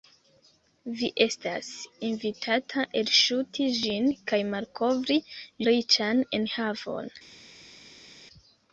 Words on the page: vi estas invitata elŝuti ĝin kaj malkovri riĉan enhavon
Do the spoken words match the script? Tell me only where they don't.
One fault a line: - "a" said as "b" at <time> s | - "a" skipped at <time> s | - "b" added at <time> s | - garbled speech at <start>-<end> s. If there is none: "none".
none